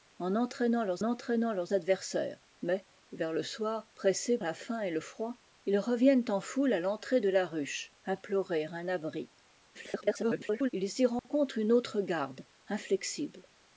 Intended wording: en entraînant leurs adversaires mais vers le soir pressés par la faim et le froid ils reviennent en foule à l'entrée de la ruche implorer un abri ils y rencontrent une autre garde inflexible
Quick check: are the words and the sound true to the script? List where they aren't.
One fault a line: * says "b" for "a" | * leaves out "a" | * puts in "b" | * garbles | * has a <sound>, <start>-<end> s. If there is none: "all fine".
* puts in "entraînant leurs"
* leaves out "par"
* garbles
* has a dropout, 11.2-11.2 s